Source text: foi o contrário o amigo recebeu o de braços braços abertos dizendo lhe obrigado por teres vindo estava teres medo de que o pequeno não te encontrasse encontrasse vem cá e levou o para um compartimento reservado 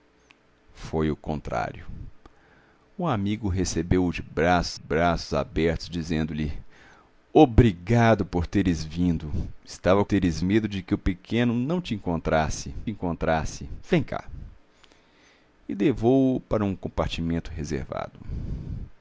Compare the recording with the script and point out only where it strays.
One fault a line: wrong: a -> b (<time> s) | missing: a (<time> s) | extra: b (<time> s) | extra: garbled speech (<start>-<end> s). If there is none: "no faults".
no faults